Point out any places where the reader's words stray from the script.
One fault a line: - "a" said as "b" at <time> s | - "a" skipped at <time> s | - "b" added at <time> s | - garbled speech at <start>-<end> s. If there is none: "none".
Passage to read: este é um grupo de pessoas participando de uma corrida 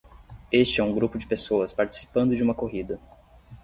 none